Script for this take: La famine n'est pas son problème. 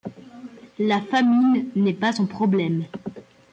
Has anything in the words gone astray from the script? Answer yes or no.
no